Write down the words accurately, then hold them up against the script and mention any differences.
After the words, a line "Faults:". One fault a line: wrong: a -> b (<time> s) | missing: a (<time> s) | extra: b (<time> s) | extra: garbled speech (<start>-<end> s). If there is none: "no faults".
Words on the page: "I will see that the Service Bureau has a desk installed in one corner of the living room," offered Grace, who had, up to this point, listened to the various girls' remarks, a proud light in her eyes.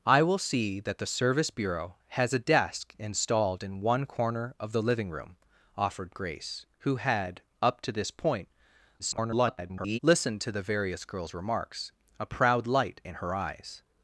"I will see that the Service Bureau has a desk installed in one corner of the living room," offered Grace, who had, up to this point, [garbled] listened to the various girls' remarks, a proud light in her eyes.
Faults:
extra: garbled speech (9.0-10.0 s)